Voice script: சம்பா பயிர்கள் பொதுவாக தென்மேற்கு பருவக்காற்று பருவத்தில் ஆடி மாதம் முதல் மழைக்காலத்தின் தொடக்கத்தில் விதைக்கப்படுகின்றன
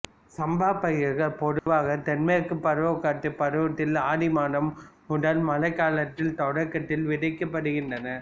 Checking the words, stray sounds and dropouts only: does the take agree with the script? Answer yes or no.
no